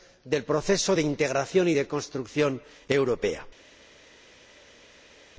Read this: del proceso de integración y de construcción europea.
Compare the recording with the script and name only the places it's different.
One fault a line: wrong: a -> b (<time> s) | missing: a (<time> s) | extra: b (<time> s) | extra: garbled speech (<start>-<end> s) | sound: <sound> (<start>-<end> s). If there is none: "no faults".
no faults